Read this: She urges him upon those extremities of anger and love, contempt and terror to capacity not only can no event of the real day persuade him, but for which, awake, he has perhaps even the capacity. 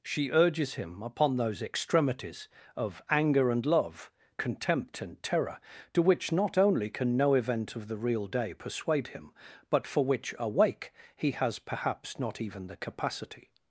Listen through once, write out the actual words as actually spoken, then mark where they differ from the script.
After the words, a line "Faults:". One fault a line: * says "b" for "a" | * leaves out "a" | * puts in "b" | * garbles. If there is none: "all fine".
She urges him upon those extremities of anger and love, contempt and terror to which not only can no event of the real day persuade him, but for which, awake, he has perhaps not even the capacity.
Faults:
* says "which" for "capacity"
* puts in "not"